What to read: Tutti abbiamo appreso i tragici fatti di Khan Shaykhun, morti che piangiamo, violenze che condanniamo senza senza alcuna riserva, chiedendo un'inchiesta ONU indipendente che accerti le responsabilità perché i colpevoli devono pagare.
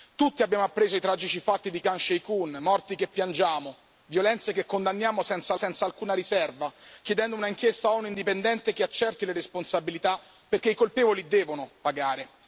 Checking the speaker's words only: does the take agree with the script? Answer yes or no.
yes